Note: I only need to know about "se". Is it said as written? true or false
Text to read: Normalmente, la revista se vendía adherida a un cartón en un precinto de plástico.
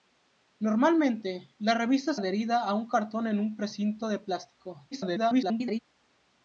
false